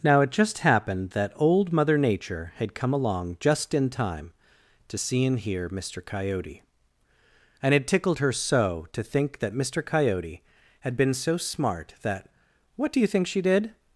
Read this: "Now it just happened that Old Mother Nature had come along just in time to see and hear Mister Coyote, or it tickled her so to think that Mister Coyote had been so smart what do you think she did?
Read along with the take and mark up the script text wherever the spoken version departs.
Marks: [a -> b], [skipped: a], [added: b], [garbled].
"Now it just happened that Old Mother Nature had come along just in time to see and hear Mister Coyote, [or -> and] it tickled her so to think that Mister Coyote had been so smart [added: that] what do you think she did?